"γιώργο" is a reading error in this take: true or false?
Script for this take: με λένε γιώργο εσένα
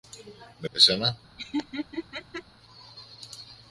true